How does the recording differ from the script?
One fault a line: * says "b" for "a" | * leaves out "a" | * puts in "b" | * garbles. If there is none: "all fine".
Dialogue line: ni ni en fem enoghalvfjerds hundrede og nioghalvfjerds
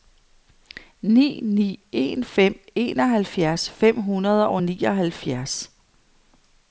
* puts in "fem"